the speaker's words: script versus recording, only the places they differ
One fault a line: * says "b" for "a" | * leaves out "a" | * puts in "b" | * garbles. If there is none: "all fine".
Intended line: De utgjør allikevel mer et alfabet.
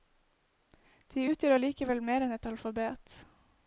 * puts in "enn"